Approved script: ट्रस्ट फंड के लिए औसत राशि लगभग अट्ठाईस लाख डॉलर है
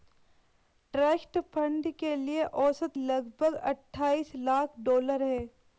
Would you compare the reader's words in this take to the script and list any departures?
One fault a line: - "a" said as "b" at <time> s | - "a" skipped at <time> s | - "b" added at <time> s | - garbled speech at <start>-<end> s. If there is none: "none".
- "राशि" skipped at 3.0 s